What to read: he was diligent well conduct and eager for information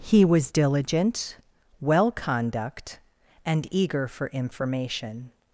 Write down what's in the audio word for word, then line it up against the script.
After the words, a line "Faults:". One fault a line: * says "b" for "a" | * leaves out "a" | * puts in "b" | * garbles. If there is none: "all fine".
he was diligent well conduct and eager for information
Faults:
all fine